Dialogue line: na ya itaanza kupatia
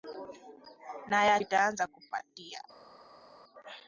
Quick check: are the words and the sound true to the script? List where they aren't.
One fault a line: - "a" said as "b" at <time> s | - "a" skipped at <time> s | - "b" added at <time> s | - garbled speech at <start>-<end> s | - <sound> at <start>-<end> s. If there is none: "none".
none